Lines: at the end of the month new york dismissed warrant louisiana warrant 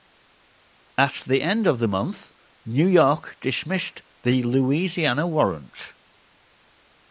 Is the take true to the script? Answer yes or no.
no